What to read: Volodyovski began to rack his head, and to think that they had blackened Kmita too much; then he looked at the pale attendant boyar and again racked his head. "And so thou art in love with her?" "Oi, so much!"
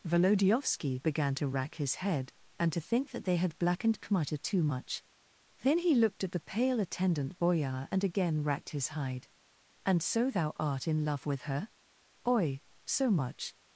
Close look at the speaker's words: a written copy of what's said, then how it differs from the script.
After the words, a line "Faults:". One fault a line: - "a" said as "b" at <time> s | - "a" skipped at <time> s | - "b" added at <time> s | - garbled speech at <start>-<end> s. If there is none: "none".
Volodyovski began to rack his head, and to think that they had blackened Kmita too much; then he looked at the pale attendant boyar and again racked his hide. "And so thou art in love with her?" "Oi, so much!"
Faults:
- "head" said as "hide" at 8.9 s